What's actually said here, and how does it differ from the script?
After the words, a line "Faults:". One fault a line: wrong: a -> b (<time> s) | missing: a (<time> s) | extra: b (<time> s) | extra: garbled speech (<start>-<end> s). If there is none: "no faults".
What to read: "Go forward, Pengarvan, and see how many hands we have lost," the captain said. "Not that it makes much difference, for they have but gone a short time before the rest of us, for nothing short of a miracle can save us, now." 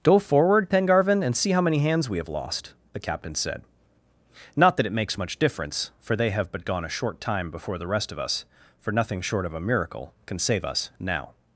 "Go forward, Pengarvan, and see how many hands we have lost," the captain said. "Not that it makes much difference, for they have but gone a short time before the rest of us, for nothing short of a miracle can save us, now."
Faults:
no faults